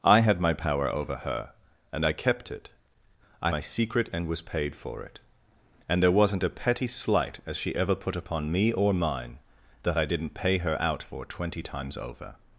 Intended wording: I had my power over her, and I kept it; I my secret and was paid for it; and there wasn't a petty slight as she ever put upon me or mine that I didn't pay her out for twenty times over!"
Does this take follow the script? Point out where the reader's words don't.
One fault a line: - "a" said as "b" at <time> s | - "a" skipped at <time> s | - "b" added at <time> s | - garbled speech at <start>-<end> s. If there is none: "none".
none